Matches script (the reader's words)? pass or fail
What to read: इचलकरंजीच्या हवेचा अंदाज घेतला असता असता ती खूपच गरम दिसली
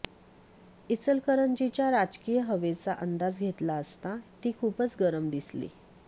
fail